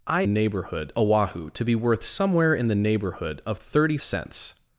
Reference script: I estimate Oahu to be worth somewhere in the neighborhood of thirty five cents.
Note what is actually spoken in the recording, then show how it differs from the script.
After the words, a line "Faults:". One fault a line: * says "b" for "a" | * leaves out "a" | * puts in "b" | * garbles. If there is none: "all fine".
I neighborhood Oahu to be worth somewhere in the neighborhood of thirty cents.
Faults:
* says "neighborhood" for "estimate"
* leaves out "five"